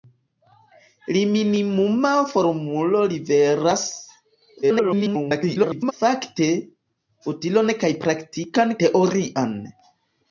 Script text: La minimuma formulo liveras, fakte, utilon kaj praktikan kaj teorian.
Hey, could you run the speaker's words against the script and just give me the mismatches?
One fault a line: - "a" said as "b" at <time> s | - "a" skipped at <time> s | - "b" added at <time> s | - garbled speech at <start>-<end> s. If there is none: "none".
- garbled speech at 4.6-5.9 s
- "kaj" skipped at 8.8 s